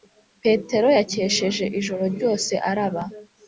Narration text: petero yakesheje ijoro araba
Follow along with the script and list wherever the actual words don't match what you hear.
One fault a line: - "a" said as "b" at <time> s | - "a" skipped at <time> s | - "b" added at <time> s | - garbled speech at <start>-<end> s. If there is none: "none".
- "ryose" added at 2.1 s